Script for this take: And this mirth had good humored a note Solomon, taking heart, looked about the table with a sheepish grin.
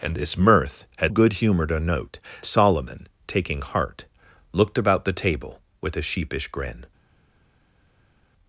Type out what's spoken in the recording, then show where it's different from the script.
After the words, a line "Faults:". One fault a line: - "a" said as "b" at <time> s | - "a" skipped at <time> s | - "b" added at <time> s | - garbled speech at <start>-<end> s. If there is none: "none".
And this mirth had good humored a note Solomon, taking heart, looked about the table with a sheepish grin.
Faults:
none